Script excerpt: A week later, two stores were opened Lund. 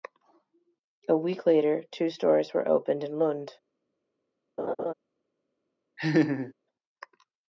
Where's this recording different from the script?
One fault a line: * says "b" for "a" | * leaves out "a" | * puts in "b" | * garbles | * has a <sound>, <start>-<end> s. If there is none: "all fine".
* puts in "in"
* has a laugh, 4.6-4.9 s
* has a laugh, 6.0-6.5 s